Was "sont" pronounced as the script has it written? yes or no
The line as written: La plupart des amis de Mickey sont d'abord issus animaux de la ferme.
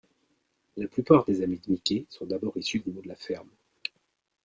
yes